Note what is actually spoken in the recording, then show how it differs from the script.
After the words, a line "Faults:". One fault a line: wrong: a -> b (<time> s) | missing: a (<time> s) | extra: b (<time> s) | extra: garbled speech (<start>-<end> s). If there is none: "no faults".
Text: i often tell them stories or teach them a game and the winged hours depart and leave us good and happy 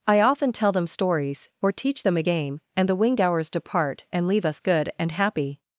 i often tell them stories or teach them a game and the winged hours depart and leave us good and happy
Faults:
no faults